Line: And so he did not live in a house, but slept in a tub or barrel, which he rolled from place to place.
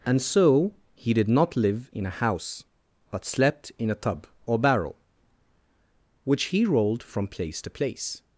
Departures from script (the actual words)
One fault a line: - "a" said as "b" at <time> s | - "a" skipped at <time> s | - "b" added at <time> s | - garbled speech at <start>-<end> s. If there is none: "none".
none